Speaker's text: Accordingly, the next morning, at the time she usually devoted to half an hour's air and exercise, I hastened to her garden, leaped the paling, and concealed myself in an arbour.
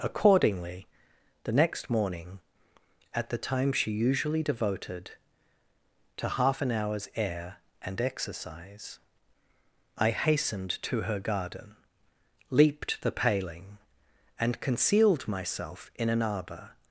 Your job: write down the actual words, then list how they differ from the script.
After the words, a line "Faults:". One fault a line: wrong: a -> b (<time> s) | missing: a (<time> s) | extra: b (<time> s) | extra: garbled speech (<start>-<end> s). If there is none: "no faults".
Accordingly, the next morning, at the time she usually devoted to half an hour's air and exercise, I hastened to her garden, leaped the paling, and concealed myself in an arbour.
Faults:
no faults